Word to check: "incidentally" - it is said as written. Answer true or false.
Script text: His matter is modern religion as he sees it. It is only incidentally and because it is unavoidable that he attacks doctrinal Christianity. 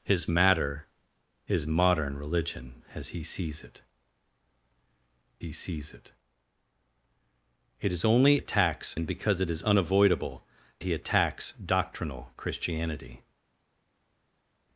false